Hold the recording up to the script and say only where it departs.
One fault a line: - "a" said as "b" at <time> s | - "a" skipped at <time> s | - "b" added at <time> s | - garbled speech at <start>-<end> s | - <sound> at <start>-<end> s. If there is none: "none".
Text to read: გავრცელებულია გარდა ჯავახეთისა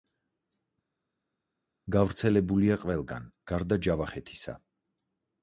- "ყველგან" added at 2.8 s